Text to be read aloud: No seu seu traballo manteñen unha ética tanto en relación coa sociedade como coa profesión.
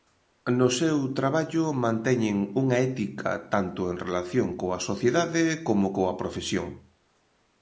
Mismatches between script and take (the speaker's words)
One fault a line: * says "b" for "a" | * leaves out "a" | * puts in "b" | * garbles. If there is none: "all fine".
* leaves out "seu"